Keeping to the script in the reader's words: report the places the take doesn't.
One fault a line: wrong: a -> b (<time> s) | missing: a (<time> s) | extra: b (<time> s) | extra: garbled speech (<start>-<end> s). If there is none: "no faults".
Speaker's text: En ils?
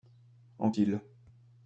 no faults